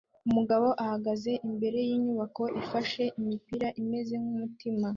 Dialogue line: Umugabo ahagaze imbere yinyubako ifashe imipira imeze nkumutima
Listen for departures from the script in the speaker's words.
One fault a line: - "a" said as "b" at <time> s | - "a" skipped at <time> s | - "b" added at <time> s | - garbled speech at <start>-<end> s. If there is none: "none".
none